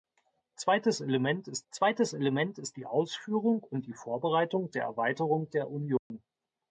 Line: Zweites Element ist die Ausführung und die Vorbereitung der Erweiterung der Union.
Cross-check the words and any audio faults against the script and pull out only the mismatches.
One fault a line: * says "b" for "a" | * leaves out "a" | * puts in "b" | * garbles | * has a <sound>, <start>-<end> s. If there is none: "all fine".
* puts in "zweites Element ist"
* has a dropout, 6.0-6.1 s